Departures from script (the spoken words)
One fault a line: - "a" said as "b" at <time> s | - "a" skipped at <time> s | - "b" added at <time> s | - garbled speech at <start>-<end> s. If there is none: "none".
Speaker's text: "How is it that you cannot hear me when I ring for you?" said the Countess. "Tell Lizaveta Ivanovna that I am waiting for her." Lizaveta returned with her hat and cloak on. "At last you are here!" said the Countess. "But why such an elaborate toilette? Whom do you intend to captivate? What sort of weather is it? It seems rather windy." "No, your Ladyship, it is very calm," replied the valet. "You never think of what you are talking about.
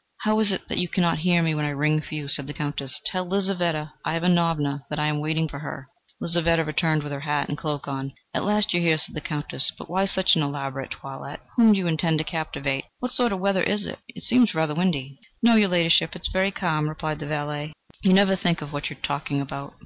none